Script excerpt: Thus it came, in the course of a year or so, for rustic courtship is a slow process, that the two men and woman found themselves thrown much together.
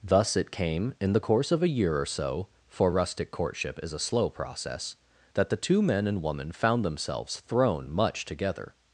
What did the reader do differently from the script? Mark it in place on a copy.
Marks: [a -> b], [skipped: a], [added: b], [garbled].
Thus it came, in the course of a year or so, for rustic courtship is a slow process, that the two men and woman found themselves thrown much together.